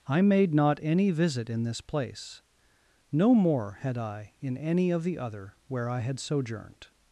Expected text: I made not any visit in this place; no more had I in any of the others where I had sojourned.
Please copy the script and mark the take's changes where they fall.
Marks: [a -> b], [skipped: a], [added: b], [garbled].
I made not any visit in this place; no more had I in any of the [others -> other] where I had sojourned.